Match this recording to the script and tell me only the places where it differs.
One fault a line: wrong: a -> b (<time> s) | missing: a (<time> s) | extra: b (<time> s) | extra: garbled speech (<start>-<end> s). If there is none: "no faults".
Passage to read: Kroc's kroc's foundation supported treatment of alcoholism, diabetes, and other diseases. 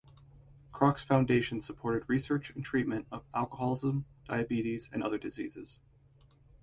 missing: kroc's (1.0 s)
extra: research and (2.1 s)